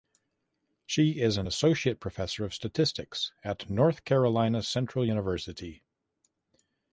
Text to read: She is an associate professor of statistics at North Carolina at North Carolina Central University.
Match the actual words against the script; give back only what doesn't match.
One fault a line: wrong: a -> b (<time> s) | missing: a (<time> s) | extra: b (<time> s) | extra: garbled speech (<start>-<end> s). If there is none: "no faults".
missing: at North Carolina (4.6 s)